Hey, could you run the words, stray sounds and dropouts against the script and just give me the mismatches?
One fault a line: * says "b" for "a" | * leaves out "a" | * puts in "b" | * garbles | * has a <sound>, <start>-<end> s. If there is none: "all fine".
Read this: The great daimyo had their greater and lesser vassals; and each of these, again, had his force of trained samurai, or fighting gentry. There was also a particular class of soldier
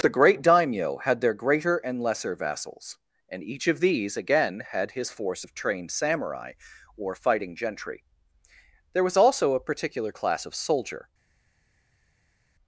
all fine